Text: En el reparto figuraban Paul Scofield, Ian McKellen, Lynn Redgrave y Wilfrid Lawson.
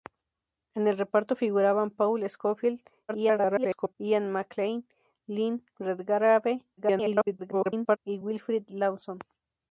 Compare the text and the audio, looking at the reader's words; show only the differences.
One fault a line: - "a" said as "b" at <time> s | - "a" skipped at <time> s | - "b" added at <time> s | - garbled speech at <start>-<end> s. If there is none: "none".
- garbled speech at 3.1-4.0 s
- garbled speech at 6.8-8.0 s